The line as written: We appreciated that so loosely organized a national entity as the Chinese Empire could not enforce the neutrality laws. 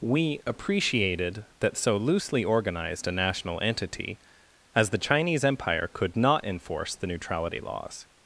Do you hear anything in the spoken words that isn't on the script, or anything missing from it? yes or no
no